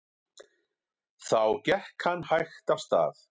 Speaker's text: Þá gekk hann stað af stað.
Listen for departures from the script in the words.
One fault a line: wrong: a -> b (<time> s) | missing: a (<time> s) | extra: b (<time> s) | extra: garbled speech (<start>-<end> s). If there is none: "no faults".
wrong: stað -> hægt (2.3 s)